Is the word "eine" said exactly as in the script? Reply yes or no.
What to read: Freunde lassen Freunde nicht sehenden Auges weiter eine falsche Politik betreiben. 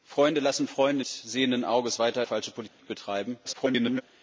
no